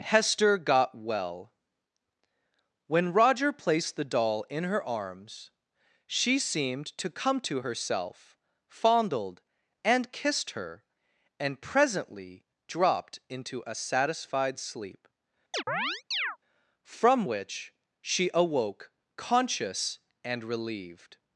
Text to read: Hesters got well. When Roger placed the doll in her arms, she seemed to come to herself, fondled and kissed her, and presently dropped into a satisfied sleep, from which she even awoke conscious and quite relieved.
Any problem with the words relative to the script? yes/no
yes